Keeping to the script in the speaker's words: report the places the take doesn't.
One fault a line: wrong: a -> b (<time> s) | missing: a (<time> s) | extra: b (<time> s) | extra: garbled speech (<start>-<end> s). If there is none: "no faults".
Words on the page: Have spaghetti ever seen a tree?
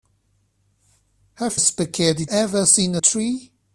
no faults